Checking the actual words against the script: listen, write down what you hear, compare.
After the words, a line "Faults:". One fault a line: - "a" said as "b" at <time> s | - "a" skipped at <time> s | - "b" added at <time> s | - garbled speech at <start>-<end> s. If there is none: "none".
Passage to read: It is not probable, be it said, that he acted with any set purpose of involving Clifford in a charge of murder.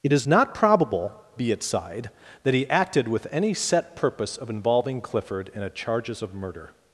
It is not probable, be it sighed, that he acted with any set purpose of involving Clifford in a charges of murder.
Faults:
- "said" said as "sighed" at 1.6 s
- "charge" said as "charges" at 5.7 s